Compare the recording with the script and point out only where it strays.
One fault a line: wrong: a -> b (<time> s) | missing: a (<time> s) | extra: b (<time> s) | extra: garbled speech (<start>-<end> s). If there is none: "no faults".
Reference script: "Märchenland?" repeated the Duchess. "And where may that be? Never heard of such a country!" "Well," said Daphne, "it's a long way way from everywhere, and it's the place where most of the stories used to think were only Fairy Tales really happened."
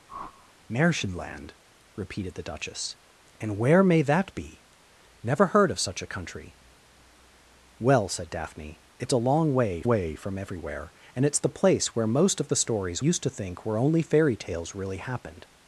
no faults